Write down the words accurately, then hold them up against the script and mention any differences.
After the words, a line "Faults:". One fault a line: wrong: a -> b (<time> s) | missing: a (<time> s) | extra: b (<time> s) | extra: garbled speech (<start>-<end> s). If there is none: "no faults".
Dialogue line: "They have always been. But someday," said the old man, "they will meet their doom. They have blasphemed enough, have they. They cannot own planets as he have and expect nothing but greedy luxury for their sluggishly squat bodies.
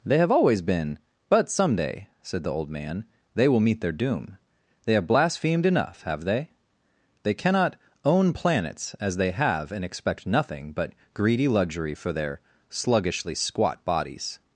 "They have always been. But someday," said the old man, "they will meet their doom. They have blasphemed enough, have they. They cannot own planets as they have and expect nothing but greedy luxury for their sluggishly squat bodies.
Faults:
wrong: he -> they (9.2 s)